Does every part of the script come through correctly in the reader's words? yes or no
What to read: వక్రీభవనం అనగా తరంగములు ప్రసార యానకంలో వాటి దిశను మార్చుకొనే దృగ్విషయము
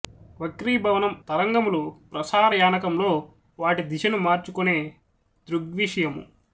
no